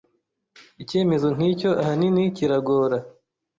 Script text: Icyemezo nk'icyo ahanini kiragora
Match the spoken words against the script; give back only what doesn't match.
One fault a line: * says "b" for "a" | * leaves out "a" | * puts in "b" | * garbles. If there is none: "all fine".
all fine